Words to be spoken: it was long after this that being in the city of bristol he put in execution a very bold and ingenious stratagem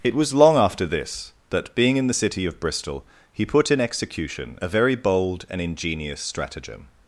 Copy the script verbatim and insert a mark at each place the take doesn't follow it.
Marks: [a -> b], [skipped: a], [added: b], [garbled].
it was long after this that being in the city of bristol he put in execution a very bold and ingenious stratagem